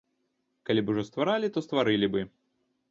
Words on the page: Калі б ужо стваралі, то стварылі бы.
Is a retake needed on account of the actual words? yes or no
no